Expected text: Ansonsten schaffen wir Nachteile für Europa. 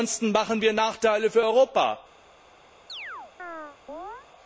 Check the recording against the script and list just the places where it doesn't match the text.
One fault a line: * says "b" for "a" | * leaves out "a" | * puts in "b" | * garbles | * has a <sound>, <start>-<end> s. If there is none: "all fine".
* has a chirp, 2.9-4.3 s